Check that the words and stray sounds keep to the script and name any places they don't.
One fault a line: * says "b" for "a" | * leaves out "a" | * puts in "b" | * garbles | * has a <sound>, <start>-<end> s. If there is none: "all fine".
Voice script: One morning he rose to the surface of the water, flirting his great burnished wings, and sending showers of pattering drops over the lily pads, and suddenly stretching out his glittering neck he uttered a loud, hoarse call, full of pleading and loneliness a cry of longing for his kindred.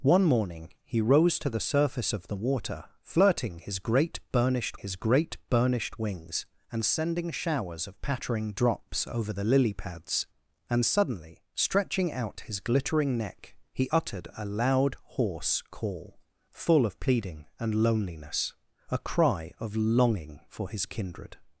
* puts in "his great burnished"